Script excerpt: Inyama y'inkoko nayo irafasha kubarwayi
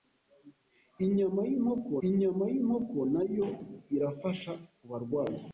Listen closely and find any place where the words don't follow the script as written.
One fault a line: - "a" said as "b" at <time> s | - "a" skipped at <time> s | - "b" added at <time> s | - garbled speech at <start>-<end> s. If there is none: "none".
- "inyama y'inkoko" added at 2.1 s